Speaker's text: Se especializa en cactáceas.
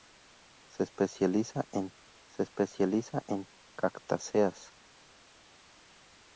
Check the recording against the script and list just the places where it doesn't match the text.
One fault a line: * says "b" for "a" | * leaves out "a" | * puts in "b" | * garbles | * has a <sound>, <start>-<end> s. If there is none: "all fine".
* puts in "se especializa en"